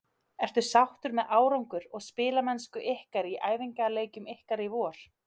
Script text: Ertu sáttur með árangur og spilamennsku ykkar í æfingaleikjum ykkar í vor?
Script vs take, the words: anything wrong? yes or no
no